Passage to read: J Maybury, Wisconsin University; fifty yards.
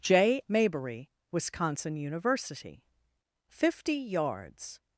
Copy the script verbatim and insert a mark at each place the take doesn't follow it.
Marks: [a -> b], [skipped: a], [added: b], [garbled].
J Maybury, Wisconsin University; fifty yards.